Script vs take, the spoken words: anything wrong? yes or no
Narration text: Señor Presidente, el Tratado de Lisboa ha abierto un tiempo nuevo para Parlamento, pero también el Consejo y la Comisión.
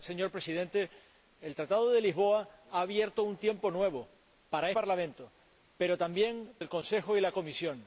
no